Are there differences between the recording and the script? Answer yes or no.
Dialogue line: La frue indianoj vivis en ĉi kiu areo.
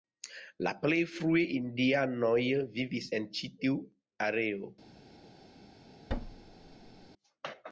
yes